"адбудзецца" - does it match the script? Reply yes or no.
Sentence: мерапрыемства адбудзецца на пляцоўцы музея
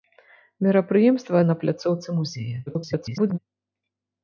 no